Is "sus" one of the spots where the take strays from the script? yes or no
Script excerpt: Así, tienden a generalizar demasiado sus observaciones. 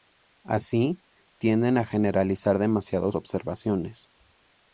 yes